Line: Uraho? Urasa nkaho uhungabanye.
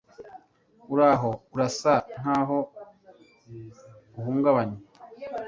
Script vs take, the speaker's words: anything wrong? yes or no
no